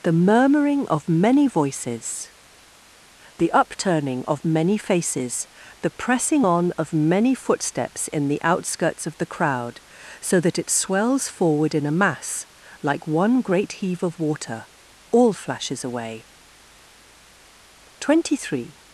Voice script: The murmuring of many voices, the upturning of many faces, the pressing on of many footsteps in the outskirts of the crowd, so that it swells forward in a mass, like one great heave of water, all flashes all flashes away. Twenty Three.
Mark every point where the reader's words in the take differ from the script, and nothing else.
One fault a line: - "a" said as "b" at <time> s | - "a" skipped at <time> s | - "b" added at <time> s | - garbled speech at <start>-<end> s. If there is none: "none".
- "all flashes" skipped at 15.8 s